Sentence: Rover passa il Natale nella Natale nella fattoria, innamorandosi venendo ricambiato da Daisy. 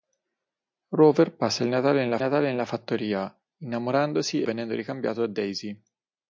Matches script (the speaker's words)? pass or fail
pass